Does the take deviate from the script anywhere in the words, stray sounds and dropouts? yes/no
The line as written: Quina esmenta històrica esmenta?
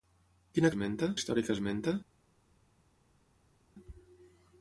no